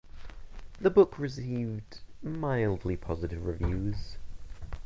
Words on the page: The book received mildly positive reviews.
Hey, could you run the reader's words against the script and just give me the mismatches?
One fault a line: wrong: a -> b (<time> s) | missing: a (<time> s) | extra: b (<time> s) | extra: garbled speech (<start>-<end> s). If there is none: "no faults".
no faults